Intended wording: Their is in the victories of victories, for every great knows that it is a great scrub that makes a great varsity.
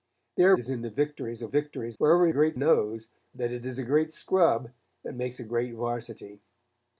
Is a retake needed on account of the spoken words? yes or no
no